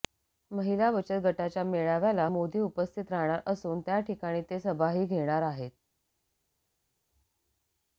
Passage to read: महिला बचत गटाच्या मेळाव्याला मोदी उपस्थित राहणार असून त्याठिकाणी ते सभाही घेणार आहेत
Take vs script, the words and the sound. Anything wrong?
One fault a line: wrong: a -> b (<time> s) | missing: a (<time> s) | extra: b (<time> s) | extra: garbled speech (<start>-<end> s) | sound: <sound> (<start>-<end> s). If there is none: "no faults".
no faults